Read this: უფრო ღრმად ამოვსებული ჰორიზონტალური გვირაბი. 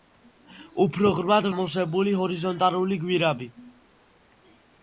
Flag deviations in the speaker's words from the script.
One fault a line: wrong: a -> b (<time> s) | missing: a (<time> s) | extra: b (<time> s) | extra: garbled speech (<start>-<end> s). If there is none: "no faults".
no faults